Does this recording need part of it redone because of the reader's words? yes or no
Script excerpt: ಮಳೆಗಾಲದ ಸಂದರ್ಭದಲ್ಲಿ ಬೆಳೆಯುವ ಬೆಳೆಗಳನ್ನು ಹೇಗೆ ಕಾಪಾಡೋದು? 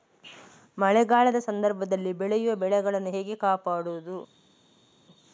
no